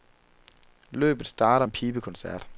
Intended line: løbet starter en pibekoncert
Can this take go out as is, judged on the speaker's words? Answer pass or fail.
pass